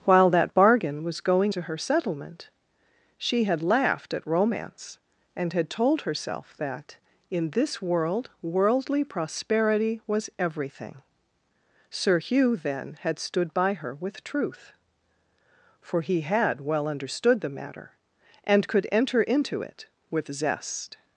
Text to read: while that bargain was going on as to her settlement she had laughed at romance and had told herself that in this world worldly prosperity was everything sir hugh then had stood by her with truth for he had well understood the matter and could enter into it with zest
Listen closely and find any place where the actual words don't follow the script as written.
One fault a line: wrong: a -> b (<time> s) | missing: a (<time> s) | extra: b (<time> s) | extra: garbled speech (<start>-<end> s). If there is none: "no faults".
missing: on as (1.5 s)